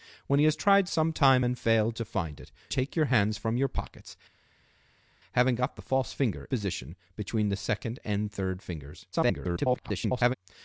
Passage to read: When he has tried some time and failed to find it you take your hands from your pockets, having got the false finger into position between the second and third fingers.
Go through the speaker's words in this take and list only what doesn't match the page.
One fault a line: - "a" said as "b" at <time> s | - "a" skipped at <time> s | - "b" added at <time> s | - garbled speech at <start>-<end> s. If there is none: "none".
- "you" skipped at 2.5 s
- "into" skipped at 6.5 s
- garbled speech at 9.1-10.3 s